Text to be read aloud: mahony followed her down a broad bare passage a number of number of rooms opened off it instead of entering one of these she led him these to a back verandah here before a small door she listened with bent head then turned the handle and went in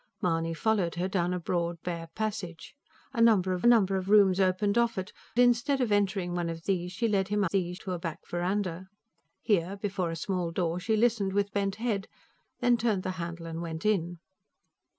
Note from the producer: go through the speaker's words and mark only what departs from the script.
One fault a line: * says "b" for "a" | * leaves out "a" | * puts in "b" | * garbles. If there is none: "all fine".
all fine